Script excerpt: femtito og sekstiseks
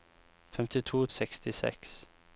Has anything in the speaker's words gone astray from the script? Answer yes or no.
no